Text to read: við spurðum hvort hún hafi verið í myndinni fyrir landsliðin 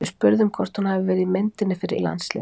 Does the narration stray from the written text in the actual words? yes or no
no